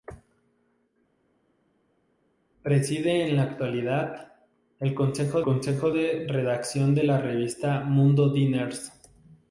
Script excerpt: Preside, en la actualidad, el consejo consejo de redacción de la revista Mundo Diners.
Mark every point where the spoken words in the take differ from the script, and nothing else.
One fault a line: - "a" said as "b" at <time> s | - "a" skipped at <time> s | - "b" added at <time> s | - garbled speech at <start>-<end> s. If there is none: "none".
none